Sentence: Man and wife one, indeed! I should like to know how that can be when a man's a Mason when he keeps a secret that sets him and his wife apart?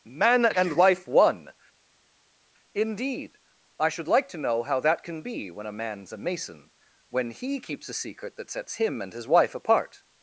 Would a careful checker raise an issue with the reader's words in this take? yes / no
no